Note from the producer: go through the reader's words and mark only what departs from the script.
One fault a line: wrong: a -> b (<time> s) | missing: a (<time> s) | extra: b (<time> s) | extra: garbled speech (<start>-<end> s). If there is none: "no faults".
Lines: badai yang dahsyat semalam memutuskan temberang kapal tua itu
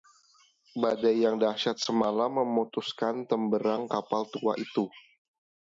no faults